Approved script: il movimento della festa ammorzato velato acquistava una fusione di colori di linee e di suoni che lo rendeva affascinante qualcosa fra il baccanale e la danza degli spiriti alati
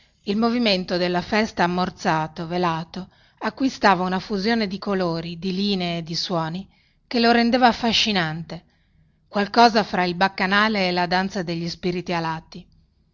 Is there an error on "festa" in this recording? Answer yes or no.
no